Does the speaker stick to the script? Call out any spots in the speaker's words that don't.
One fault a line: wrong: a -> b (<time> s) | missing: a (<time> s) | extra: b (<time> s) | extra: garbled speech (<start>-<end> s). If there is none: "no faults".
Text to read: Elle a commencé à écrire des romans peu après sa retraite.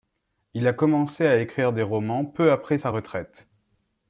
wrong: Elle -> Il (0.6 s)